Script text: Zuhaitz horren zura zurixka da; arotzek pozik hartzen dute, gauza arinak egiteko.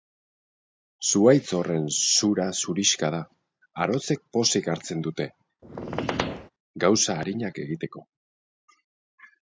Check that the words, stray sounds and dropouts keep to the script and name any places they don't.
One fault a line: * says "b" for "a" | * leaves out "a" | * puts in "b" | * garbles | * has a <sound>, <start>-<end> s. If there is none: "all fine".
* has a squeak, 5.6-6.5 s